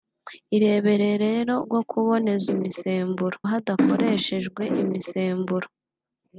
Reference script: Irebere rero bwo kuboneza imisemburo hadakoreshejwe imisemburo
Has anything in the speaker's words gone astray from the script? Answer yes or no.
no